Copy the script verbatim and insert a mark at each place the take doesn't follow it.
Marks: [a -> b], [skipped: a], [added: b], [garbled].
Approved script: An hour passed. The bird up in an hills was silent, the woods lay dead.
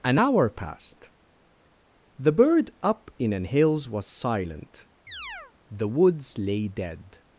An hour passed. The bird up in an hills was silent, the woods lay dead.